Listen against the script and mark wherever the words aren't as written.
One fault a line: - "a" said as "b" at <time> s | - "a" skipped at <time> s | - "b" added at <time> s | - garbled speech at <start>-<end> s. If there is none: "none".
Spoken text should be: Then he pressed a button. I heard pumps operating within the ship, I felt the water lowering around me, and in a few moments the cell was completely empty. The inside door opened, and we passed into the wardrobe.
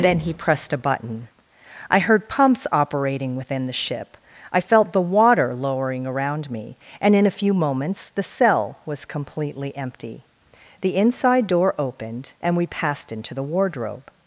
none